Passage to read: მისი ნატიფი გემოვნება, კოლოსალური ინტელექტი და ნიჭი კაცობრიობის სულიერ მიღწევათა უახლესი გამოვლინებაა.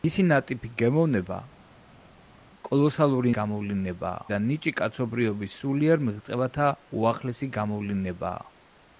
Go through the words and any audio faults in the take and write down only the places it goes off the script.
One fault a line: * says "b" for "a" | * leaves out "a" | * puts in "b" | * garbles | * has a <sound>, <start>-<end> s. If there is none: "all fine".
* says "გამოვლინებაა" for "ინტელექტი"